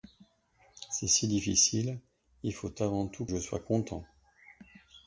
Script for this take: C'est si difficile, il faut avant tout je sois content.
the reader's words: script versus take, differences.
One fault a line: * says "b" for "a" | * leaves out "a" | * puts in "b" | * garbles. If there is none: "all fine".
all fine